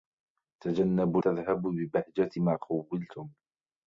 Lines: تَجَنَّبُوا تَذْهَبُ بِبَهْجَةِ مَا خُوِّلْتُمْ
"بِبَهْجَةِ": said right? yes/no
yes